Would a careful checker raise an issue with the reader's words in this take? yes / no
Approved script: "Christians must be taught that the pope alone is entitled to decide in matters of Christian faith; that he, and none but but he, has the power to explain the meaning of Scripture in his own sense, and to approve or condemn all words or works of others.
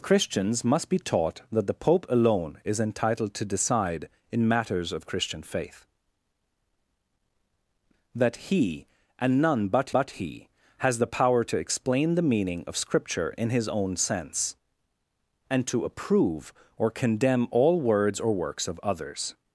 no